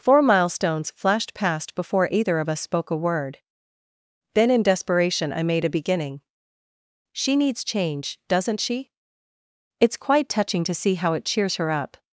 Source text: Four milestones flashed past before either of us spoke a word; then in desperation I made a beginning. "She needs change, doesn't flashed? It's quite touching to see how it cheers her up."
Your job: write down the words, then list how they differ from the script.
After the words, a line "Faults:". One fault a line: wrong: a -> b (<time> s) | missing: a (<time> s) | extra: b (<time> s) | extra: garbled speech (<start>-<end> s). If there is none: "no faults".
Four milestones flashed past before either of us spoke a word; then in desperation I made a beginning. "She needs change, doesn't she? It's quite touching to see how it cheers her up."
Faults:
wrong: flashed -> she (8.6 s)